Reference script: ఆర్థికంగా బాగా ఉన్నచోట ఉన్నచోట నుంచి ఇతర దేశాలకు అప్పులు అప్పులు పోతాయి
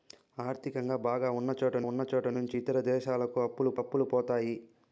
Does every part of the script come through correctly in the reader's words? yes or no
yes